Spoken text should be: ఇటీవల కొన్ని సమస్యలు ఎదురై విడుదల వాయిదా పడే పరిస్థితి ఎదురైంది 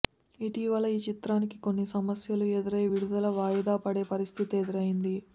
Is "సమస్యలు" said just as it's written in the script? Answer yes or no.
yes